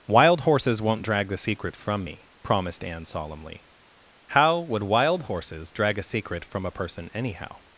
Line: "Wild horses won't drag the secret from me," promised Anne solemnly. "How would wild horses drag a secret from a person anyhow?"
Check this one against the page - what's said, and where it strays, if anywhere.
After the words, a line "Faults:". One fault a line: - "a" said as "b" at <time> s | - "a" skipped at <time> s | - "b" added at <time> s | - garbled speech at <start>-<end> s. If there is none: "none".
"Wild horses won't drag the secret from me," promised Anne solemnly. "How would wild horses drag a secret from a person anyhow?"
Faults:
none